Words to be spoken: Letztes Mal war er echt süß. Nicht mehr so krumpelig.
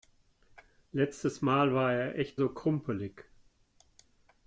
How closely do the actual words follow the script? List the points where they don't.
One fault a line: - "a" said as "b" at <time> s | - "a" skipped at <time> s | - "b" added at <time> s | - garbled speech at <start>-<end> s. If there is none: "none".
- "süß Nicht mehr" skipped at 2.4 s